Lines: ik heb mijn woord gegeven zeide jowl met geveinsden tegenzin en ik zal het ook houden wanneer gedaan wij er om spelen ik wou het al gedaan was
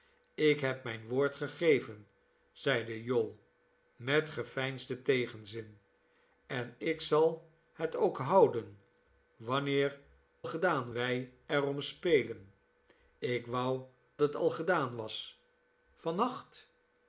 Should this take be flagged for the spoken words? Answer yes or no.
no